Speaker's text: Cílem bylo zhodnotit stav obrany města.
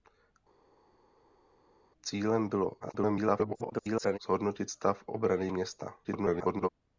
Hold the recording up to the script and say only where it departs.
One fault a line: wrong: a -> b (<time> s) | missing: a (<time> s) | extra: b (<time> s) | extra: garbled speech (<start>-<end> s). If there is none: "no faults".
extra: garbled speech (2.8-4.2 s)
extra: garbled speech (6.0-6.7 s)